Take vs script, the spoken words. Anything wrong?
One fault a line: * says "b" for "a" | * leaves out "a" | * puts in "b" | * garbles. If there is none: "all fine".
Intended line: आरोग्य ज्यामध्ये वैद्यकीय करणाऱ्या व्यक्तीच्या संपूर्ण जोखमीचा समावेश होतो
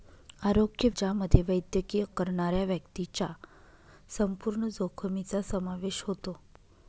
all fine